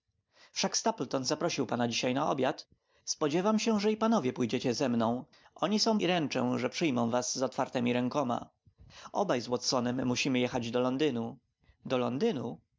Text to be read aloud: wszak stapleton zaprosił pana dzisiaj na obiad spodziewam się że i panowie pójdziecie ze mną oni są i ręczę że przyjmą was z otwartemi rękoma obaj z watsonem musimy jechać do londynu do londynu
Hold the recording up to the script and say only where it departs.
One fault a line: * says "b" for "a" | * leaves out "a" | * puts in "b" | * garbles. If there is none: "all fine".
all fine